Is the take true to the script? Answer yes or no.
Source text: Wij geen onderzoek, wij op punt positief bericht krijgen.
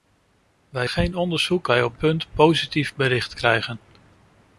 yes